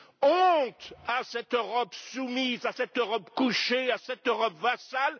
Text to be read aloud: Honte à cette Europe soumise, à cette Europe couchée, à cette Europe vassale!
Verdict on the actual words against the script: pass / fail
pass